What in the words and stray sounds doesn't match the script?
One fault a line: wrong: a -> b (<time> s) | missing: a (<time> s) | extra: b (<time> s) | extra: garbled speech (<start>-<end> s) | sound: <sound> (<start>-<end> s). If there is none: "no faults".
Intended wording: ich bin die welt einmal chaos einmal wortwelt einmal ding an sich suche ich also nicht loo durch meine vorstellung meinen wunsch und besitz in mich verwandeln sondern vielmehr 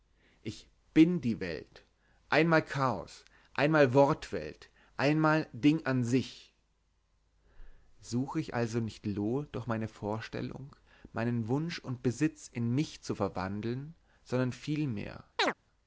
extra: zu (13.0 s)
sound: chirp (15.4-15.5 s)